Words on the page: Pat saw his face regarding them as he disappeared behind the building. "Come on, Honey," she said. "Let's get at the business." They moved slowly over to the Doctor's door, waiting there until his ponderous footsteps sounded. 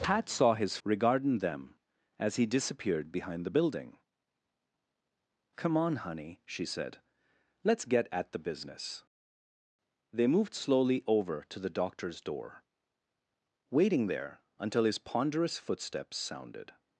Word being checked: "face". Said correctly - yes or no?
no